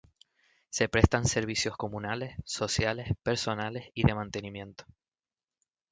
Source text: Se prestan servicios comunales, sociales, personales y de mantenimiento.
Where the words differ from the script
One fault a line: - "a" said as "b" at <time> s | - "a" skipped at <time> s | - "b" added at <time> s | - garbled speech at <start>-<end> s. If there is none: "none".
none